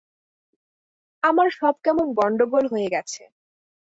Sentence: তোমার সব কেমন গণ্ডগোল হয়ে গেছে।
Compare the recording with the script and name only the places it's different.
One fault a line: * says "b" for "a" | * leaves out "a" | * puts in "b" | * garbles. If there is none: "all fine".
* says "আমার" for "তোমার"